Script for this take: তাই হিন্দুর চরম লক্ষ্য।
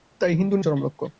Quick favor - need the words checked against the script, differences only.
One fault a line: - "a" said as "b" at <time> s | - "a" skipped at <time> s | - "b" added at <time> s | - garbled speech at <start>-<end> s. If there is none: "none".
none